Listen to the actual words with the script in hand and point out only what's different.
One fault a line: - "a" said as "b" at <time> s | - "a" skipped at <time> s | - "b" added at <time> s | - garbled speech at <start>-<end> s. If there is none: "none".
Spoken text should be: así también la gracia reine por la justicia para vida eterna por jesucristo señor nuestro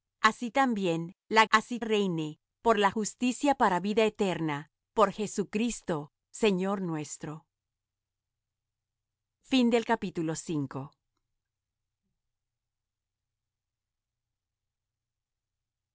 - "gracia" said as "así" at 1.5 s